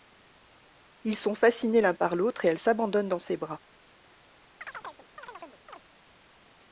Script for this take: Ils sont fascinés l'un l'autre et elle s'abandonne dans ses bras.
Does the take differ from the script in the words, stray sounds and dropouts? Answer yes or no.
yes